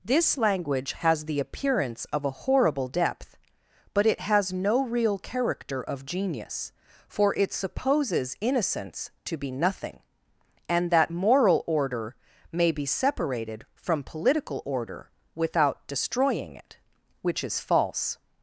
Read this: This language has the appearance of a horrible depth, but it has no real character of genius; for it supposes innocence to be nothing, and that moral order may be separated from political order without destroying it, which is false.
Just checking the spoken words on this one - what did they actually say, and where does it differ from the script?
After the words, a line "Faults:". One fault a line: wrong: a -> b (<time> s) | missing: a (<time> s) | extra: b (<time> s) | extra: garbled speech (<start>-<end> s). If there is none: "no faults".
This language has the appearance of a horrible depth, but it has no real character of genius; for it supposes innocence to be nothing, and that moral order may be separated from political order without destroying it, which is false.
Faults:
no faults